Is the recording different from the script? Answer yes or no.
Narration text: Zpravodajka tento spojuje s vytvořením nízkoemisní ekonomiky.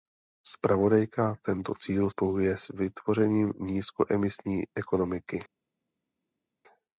yes